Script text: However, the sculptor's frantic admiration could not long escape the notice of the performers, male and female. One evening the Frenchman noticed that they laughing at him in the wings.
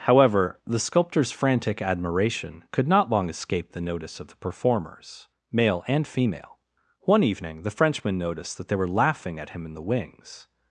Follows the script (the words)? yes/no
no